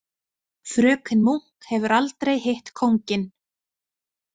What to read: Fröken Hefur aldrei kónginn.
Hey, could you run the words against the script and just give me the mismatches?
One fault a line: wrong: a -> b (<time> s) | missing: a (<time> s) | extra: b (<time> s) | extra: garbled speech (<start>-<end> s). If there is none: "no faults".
extra: Munk (1.3 s)
extra: hitt (2.5 s)